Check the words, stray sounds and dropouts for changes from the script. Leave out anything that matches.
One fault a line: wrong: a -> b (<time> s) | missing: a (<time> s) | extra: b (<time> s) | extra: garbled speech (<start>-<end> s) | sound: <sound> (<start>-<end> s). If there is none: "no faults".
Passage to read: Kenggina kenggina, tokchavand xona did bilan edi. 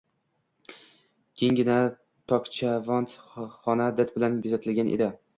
missing: kenggina (1.8 s)
extra: bezatilgan (4.5 s)